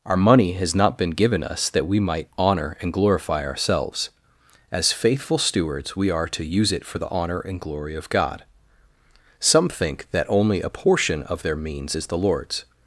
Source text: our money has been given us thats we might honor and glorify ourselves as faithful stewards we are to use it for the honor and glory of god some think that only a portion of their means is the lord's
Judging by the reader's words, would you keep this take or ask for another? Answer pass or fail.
fail